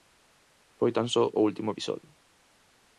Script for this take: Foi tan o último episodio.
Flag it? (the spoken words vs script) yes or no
yes